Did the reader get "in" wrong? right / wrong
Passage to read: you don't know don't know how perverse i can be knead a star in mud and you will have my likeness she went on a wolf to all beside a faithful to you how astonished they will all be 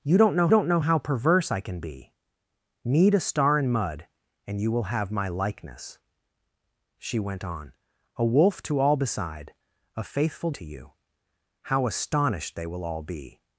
right